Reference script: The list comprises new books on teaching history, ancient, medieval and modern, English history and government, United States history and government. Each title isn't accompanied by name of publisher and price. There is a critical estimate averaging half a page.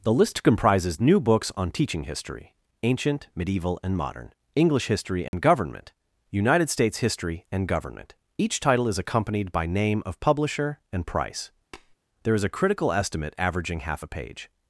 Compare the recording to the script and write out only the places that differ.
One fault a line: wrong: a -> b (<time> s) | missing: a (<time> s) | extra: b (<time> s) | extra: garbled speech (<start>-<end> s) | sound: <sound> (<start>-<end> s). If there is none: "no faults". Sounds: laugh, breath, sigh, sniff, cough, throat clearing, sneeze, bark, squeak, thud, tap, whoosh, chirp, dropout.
sound: dropout (5.3-5.3 s)
wrong: isn't -> is (8.9 s)
sound: tap (11.7-12.0 s)